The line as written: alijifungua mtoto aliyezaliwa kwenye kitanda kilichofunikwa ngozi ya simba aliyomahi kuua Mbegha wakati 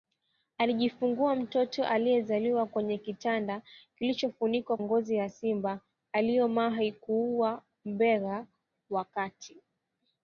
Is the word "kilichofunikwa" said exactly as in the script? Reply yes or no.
yes